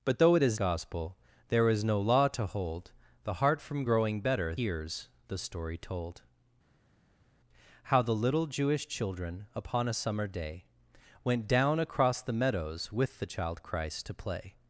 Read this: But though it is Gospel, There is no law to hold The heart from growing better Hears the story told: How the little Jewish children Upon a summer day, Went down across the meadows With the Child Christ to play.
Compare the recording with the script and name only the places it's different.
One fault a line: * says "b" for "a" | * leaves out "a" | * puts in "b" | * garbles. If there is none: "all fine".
all fine